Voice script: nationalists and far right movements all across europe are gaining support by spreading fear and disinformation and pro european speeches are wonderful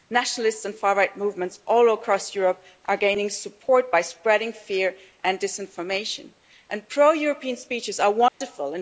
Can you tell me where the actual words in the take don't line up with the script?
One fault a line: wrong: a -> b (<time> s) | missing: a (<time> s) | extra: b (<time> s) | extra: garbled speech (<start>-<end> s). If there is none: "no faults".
no faults